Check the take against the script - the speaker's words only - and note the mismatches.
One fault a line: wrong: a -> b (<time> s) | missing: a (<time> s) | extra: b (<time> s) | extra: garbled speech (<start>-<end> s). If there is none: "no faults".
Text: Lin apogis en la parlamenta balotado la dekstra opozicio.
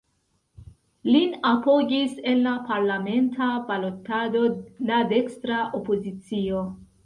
no faults